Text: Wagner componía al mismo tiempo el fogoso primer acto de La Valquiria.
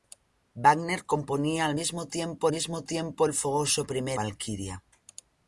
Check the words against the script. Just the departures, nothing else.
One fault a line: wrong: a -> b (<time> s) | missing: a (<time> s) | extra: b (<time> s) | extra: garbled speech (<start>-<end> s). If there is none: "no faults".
extra: mismo tiempo (2.5 s)
missing: acto de La (4.2 s)